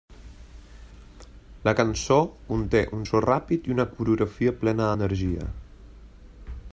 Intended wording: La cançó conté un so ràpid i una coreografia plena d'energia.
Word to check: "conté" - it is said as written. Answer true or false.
true